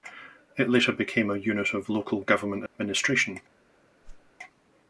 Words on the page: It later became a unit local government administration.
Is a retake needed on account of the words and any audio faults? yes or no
yes